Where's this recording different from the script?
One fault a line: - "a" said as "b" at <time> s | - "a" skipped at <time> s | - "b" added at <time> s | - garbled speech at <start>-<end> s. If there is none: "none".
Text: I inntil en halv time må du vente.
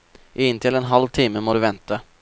none